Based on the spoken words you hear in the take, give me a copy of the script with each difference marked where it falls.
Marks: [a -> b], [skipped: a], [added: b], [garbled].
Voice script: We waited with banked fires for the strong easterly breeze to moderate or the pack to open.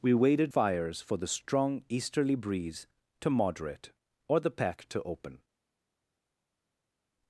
We waited [skipped: with banked] fires for the strong easterly breeze to moderate or the pack to open.